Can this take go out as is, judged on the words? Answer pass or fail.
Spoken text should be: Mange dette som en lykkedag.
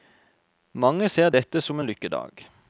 fail